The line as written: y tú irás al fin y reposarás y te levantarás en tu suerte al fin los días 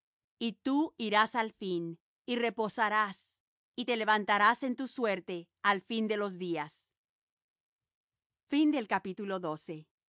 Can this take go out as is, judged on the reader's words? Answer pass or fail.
fail